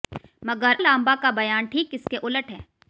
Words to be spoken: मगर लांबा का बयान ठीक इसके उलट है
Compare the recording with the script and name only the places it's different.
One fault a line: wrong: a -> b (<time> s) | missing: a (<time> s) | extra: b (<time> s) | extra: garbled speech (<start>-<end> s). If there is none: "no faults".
no faults